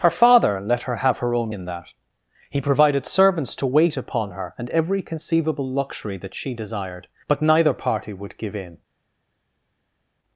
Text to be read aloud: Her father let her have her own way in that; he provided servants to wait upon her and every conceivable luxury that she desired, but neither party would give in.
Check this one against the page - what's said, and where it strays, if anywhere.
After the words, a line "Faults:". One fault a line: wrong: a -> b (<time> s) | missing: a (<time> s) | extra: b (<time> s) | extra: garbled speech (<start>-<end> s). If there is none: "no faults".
Her father let her have her own in that; he provided servants to wait upon her and every conceivable luxury that she desired, but neither party would give in.
Faults:
missing: way (1.5 s)